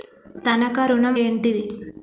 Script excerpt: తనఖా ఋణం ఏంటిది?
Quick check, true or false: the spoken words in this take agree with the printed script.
true